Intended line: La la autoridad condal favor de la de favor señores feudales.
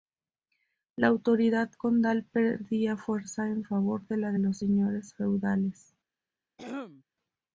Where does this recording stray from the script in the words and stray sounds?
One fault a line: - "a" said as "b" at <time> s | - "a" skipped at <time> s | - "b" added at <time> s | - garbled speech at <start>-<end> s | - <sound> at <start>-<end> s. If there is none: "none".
- "la" skipped at 1.1 s
- "perdía fuerza en" added at 2.2 s
- "favor" said as "los" at 4.4 s
- throat clearing at 6.6-7.0 s